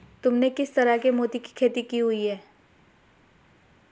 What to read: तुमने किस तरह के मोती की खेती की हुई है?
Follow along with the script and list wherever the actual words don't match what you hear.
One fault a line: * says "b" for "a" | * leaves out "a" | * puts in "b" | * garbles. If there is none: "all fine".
all fine